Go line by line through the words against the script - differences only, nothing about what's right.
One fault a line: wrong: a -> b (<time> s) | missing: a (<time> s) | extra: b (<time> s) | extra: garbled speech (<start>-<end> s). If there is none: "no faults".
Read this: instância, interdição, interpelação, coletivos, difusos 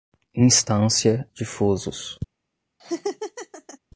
missing: interdição interpelação coletivos (1.2 s)